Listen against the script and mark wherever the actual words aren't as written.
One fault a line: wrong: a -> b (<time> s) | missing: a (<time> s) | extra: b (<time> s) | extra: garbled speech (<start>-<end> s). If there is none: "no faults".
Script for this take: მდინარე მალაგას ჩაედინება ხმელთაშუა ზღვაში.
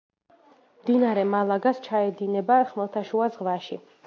no faults